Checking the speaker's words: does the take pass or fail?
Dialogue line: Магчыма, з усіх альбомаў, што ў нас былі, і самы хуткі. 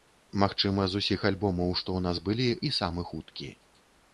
pass